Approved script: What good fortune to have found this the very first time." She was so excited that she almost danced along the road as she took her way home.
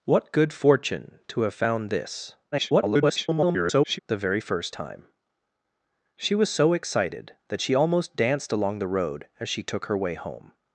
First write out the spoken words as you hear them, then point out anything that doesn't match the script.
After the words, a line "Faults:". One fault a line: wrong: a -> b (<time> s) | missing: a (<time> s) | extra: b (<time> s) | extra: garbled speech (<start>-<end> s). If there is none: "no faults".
What good fortune to have found this [garbled] the very first time." She was so excited that she almost danced along the road as she took her way home.
Faults:
extra: garbled speech (2.5-4.0 s)